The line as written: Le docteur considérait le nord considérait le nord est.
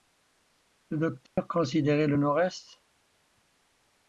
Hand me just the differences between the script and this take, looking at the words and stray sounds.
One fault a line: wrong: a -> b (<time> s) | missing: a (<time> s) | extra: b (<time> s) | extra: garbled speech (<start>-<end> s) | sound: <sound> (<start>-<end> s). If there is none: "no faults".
sound: dropout (1.3-1.4 s)
missing: considérait le nord (2.4 s)